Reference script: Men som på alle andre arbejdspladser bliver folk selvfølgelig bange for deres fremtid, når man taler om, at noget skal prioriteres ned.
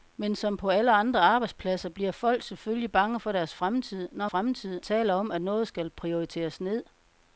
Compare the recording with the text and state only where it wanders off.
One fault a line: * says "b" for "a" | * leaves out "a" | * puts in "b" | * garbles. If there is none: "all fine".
* says "fremtid" for "man"